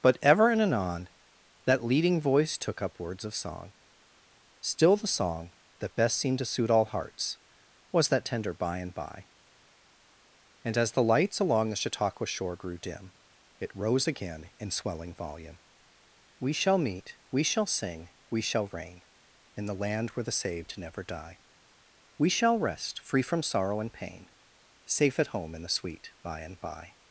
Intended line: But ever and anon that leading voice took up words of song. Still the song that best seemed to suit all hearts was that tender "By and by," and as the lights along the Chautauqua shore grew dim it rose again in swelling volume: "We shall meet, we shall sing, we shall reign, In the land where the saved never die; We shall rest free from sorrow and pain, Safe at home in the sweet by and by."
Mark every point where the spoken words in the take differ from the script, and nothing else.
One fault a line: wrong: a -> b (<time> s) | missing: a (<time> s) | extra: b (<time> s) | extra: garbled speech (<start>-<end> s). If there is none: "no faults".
no faults